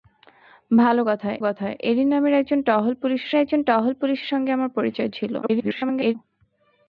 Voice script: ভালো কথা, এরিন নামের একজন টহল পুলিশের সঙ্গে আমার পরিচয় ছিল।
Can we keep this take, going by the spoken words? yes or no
no